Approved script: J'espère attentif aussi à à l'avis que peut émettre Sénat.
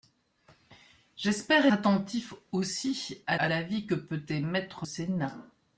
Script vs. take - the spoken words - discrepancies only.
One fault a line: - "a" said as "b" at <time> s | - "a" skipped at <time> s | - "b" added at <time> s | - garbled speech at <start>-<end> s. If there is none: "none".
none